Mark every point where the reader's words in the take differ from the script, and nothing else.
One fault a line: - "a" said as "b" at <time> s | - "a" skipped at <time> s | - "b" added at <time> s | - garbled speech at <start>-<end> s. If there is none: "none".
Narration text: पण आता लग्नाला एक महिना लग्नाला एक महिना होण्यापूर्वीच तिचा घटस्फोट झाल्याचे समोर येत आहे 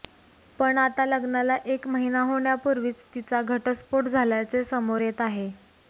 - "लग्नाला एक महिना" skipped at 2.2 s